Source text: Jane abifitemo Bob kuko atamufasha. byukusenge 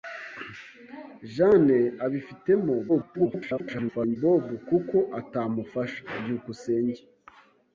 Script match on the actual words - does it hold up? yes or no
no